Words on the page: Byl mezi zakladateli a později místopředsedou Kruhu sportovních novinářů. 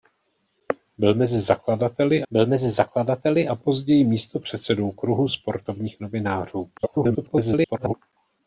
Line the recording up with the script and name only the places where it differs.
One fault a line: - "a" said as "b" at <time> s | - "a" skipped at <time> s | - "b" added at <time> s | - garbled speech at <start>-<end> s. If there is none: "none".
- "byl mezi zakladateli" added at 2.3 s
- garbled speech at 6.8-7.9 s